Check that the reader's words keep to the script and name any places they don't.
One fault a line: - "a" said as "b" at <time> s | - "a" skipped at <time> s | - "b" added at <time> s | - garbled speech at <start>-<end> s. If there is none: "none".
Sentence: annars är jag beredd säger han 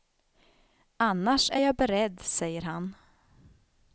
none